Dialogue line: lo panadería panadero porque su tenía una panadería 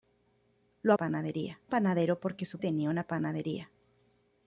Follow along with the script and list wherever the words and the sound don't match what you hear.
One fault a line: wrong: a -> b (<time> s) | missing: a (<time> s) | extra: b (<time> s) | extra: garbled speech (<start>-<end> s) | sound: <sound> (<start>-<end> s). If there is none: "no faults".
no faults